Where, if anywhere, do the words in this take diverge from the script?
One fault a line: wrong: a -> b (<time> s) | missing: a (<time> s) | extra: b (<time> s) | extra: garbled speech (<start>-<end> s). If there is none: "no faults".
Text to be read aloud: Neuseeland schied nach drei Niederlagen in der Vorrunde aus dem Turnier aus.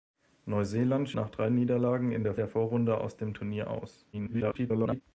missing: schied (1.1 s)
extra: der (2.4 s)
extra: garbled speech (4.1-5.0 s)